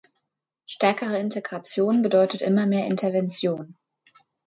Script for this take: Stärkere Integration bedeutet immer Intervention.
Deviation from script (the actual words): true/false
true